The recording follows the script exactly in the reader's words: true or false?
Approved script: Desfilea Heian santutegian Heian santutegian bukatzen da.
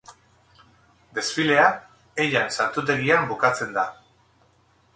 false